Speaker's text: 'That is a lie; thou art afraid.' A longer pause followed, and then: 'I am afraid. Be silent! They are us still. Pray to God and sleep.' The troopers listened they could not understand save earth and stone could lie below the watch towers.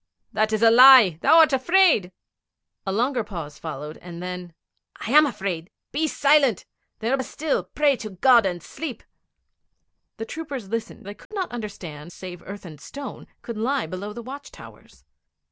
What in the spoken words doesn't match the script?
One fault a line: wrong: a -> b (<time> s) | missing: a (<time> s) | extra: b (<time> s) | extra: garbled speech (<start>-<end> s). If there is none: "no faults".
no faults